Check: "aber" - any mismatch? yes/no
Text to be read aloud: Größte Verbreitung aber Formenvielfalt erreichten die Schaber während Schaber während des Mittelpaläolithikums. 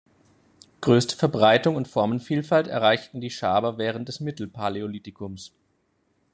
yes